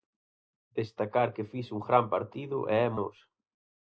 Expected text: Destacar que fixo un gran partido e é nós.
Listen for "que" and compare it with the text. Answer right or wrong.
right